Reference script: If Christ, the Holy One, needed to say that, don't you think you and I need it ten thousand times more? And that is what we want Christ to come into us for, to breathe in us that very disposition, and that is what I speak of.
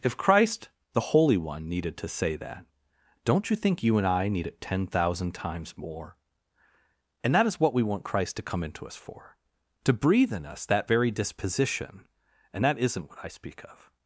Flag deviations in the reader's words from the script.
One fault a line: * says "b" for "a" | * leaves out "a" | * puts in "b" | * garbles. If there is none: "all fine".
* says "isn't" for "is"